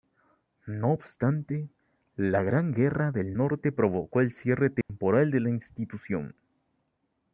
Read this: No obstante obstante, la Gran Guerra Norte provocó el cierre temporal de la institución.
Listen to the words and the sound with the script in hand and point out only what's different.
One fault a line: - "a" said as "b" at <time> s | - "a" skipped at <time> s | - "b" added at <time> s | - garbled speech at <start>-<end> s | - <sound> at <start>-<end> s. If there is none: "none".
- "obstante" skipped at 1.7 s
- "del" added at 3.1 s
- dropout at 4.8-4.9 s